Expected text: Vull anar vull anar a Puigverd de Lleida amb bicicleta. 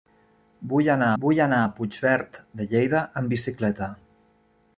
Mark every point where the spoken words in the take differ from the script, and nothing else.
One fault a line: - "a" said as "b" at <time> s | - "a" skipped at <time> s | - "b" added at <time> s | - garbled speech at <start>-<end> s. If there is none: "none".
none